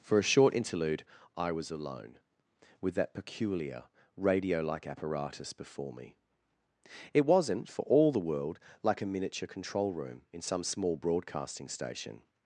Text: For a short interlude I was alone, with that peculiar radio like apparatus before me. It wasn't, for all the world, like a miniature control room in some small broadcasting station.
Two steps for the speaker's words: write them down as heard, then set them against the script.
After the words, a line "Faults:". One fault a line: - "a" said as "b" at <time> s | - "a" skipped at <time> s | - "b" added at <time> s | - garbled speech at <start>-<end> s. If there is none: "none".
For a short interlude I was alone, with that peculiar radio like apparatus before me. It wasn't, for all the world, like a miniature control room in some small broadcasting station.
Faults:
none